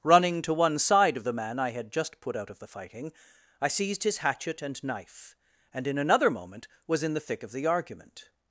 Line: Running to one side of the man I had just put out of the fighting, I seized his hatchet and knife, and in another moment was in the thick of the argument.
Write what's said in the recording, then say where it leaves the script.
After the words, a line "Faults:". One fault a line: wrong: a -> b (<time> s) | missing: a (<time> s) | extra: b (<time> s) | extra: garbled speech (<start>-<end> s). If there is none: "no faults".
Running to one side of the man I had just put out of the fighting, I seized his hatchet and knife, and in another moment was in the thick of the argument.
Faults:
no faults